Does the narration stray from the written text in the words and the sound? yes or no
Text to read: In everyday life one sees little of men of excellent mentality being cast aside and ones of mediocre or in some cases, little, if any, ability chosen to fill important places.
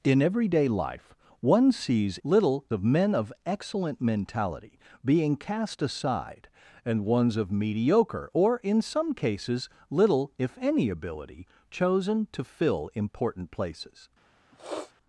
yes